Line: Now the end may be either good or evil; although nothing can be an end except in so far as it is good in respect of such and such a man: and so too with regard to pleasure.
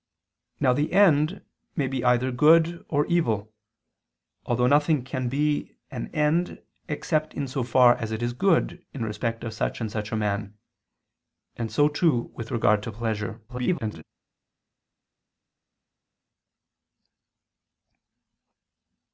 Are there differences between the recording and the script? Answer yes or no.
yes